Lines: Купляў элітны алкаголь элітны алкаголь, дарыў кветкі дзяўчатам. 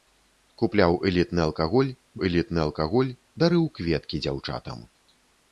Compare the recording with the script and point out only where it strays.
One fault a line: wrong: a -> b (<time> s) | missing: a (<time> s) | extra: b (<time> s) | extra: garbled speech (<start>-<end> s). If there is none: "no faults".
no faults